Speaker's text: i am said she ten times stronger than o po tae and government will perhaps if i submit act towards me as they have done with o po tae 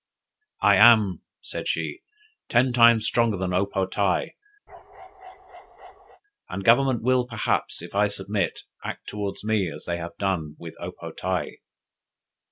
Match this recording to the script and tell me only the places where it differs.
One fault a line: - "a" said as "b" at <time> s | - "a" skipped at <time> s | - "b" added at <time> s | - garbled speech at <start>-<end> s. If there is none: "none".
none